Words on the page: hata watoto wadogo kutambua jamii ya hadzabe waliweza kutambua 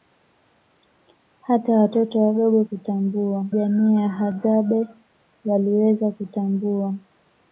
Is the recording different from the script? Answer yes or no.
no